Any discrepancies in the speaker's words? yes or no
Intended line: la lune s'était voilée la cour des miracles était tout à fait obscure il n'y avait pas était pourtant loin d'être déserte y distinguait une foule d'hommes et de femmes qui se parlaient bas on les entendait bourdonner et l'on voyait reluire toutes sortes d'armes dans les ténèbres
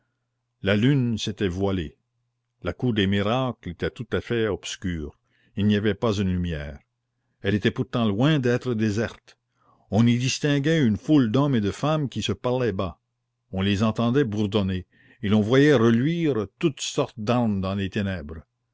yes